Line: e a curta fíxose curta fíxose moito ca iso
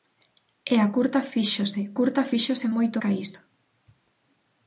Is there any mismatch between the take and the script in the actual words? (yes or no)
no